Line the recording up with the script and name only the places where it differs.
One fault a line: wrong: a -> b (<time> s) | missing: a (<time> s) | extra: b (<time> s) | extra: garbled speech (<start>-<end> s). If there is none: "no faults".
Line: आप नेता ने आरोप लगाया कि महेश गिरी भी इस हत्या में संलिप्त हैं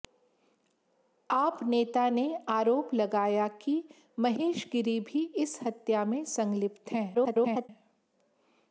extra: garbled speech (7.1-7.7 s)